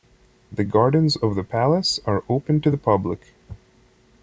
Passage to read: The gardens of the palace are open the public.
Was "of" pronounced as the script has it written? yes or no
yes